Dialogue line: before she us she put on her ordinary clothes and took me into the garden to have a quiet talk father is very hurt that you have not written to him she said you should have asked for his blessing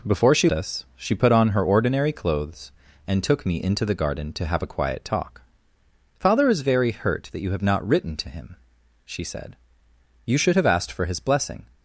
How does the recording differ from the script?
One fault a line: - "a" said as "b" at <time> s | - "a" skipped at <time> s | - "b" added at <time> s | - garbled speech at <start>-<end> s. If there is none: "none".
none